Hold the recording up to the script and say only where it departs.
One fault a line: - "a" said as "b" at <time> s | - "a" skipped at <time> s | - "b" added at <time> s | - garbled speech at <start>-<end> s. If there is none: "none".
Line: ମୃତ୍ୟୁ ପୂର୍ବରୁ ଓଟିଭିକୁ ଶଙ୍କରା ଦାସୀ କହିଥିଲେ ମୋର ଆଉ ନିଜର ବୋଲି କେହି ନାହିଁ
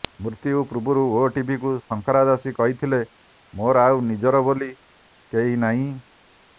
none